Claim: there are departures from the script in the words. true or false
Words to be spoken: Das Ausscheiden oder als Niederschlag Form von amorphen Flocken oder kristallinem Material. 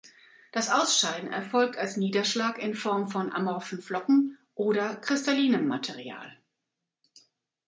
true